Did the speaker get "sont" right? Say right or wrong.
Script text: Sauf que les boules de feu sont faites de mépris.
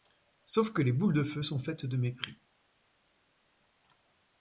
right